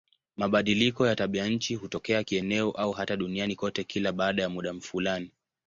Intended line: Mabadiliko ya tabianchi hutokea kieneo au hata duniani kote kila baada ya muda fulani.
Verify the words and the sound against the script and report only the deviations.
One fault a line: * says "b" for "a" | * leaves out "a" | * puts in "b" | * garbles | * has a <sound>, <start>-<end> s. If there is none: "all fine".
all fine